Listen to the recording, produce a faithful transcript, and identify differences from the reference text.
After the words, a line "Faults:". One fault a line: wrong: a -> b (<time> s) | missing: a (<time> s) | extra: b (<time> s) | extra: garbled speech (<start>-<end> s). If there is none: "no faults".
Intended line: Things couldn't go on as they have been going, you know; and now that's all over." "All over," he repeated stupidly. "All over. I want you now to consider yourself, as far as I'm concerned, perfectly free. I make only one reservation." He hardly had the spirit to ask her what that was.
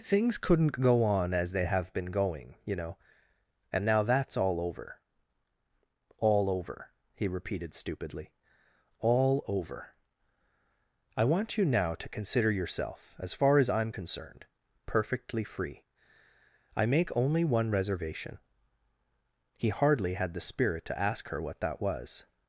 Things couldn't go on as they have been going, you know; and now that's all over." "All over," he repeated stupidly. "All over. I want you now to consider yourself, as far as I'm concerned, perfectly free. I make only one reservation." He hardly had the spirit to ask her what that was.
Faults:
no faults